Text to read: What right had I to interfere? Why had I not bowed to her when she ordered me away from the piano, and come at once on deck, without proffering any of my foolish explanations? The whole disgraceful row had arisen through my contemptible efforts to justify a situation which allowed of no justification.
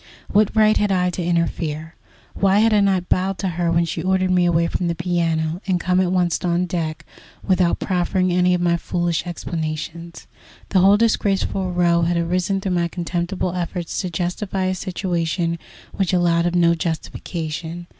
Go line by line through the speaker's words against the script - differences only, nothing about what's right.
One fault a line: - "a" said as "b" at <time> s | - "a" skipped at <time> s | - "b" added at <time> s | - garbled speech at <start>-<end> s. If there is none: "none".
none